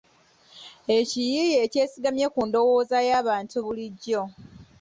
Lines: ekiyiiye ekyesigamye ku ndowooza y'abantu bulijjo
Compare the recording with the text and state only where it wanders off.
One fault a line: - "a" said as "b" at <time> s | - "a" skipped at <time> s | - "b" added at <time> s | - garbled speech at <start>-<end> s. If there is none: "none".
none